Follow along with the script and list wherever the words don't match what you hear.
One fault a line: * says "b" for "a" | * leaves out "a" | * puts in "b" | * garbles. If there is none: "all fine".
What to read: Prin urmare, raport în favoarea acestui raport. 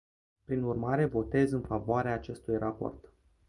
* says "votez" for "raport"